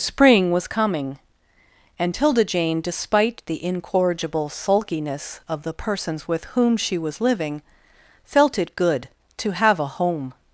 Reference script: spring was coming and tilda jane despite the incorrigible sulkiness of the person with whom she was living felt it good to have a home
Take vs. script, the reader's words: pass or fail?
fail